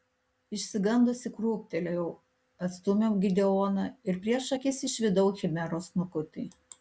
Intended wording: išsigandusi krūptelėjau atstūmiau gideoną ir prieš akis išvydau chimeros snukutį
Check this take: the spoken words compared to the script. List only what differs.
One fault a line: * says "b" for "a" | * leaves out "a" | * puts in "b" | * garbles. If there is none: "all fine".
all fine